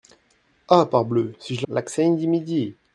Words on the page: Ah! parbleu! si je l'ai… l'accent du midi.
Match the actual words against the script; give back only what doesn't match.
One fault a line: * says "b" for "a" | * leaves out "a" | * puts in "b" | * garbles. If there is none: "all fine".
all fine